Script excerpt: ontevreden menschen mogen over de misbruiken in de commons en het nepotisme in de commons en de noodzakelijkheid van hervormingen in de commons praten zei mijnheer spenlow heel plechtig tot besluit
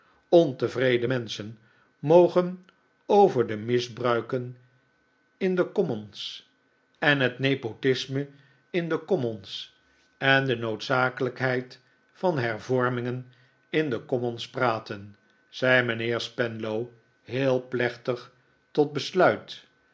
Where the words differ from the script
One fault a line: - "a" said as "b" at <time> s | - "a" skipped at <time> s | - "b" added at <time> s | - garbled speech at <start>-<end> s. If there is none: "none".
none